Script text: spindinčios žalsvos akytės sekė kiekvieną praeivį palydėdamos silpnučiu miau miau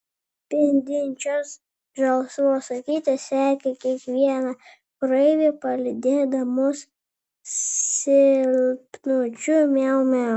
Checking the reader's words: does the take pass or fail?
pass